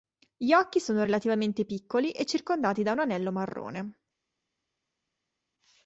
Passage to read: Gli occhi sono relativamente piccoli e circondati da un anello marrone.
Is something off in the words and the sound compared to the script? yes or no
no